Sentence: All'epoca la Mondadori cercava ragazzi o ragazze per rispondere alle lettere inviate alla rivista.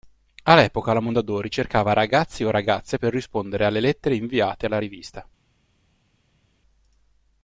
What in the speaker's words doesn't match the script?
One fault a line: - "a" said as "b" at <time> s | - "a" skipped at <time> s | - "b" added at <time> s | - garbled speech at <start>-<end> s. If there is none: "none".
none